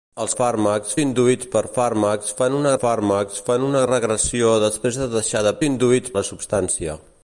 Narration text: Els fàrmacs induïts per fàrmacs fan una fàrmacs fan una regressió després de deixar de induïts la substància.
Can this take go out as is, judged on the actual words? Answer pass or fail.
pass